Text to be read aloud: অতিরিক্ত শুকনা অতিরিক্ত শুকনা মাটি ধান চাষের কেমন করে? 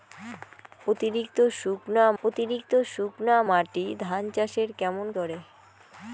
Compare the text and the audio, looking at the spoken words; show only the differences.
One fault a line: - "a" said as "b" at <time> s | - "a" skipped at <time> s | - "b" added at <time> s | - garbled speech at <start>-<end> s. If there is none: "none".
none